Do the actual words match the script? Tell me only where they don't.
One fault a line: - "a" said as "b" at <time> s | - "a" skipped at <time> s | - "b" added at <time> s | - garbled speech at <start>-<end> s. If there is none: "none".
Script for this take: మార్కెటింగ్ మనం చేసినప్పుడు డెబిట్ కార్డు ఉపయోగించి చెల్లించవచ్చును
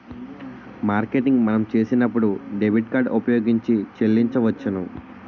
none